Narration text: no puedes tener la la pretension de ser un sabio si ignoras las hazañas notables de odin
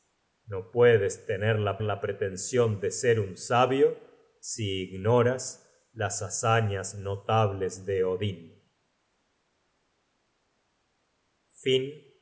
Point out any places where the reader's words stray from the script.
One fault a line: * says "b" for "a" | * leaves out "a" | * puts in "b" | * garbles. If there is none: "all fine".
all fine